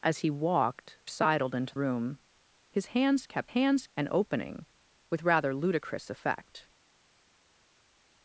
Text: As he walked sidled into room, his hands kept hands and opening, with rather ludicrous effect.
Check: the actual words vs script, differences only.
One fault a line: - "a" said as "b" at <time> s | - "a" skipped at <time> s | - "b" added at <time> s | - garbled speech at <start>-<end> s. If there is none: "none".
none